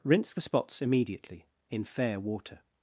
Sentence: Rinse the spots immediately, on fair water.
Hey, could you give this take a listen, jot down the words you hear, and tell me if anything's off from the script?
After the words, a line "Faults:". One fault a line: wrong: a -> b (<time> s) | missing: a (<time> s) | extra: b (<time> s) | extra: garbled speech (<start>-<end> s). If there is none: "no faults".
Rinse the spots immediately, in fair water.
Faults:
wrong: on -> in (1.7 s)